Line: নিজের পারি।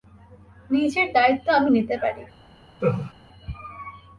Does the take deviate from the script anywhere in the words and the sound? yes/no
yes